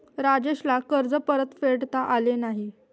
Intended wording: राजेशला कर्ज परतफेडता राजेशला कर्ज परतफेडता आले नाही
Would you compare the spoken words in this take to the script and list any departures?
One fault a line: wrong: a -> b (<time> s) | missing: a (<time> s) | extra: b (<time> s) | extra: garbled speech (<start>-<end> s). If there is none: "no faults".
missing: राजेशला कर्ज परतफेडता (2.0 s)